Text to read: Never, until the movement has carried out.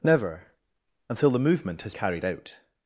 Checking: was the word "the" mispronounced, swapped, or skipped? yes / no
no